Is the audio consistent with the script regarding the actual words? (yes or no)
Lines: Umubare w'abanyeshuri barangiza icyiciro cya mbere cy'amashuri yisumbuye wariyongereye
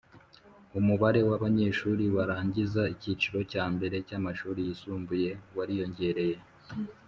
yes